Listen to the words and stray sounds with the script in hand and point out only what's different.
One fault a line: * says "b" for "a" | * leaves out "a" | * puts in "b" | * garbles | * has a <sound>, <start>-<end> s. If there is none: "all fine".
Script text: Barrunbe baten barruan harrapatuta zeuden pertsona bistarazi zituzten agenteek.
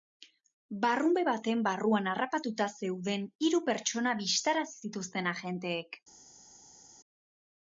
* puts in "hiru"